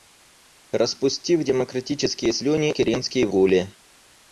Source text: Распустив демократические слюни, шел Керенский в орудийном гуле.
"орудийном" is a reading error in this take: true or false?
true